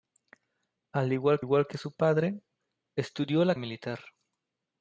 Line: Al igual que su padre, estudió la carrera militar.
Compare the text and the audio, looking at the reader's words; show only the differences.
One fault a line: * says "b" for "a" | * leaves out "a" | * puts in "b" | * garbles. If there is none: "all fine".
* puts in "igual"
* leaves out "carrera"